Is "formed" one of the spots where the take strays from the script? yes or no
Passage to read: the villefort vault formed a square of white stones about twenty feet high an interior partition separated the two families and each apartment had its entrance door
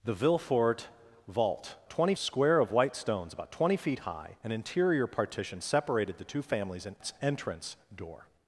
yes